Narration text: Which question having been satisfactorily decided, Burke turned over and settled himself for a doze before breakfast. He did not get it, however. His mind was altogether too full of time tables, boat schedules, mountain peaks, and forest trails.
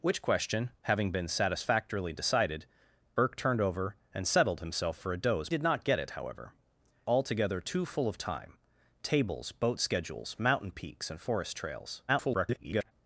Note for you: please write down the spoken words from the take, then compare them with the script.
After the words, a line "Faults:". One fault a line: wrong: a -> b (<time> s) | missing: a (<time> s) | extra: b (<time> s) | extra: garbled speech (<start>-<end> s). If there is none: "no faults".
Which question having been satisfactorily decided, Burke turned over and settled himself for a doze did not get it, however. Altogether too full of time tables, boat schedules, mountain peaks, and forest trails. [garbled]
Faults:
missing: before breakfast He (5.5 s)
missing: His mind was (6.5 s)
extra: garbled speech (12.1-12.9 s)